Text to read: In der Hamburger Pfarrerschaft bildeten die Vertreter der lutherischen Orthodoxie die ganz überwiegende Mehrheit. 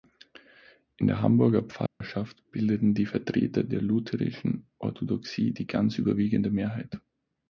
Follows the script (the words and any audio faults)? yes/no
no